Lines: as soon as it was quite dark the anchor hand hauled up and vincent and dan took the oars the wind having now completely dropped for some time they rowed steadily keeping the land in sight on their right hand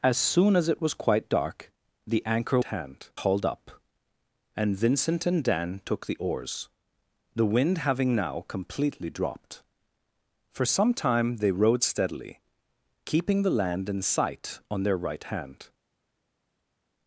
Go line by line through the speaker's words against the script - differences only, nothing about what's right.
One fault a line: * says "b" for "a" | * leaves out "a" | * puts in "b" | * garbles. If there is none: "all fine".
all fine